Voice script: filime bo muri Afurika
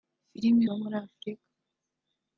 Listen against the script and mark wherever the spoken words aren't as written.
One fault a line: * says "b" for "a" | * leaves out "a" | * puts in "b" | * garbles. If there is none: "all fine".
all fine